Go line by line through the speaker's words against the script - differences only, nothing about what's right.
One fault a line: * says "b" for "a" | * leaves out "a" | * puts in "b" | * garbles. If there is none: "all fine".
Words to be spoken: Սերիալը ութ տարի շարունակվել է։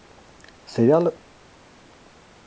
* leaves out "ութ տարի շարունակվել"